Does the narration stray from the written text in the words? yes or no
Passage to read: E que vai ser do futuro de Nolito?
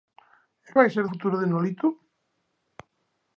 yes